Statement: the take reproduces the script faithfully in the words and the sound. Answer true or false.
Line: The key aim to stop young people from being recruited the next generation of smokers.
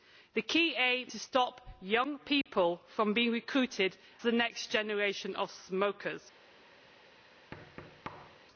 false